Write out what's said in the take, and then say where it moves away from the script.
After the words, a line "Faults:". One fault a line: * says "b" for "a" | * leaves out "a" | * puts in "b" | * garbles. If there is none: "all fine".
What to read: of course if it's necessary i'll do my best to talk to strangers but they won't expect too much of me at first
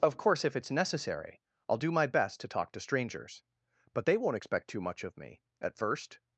of course if it's necessary i'll do my best to talk to strangers but they won't expect too much of me at first
Faults:
all fine